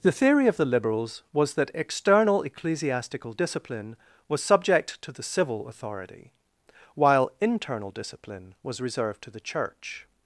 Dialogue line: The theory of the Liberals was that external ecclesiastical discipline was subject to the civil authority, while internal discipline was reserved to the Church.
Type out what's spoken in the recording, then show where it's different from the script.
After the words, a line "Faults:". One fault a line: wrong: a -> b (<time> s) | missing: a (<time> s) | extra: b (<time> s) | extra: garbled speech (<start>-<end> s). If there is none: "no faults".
The theory of the Liberals was that external ecclesiastical discipline was subject to the civil authority, while internal discipline was reserved to the Church.
Faults:
no faults